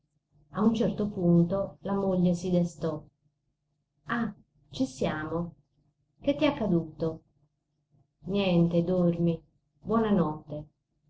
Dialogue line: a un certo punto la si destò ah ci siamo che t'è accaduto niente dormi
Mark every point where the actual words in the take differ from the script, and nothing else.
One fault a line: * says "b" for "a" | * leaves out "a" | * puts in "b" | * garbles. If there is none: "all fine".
* puts in "moglie"